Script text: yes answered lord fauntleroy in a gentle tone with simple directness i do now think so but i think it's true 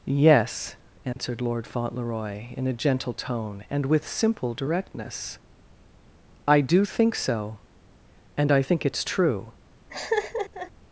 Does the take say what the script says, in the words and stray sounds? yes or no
no